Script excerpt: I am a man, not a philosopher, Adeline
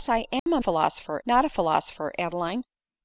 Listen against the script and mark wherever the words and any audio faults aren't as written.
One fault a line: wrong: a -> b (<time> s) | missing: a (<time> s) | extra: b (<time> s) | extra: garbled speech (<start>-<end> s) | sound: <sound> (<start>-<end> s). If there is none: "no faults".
sound: dropout (0.4-0.5 s)
wrong: man -> philosopher (0.6 s)